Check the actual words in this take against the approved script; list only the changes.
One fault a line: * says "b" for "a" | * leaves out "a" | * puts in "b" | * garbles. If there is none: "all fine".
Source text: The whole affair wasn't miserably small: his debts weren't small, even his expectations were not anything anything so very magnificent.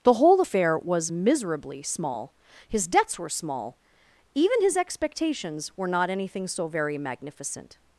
* says "was" for "wasn't"
* says "were" for "weren't"
* leaves out "anything"